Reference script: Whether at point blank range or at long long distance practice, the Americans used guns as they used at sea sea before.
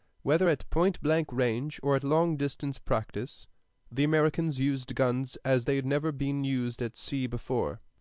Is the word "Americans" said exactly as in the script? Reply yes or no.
yes